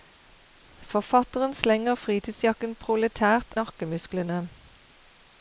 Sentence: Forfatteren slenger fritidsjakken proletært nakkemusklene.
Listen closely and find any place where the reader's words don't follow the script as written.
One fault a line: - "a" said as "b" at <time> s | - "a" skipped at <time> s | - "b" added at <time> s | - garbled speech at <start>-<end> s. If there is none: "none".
none